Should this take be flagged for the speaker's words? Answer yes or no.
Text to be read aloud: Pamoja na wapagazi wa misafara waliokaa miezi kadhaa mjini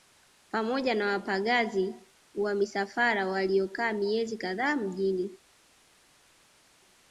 no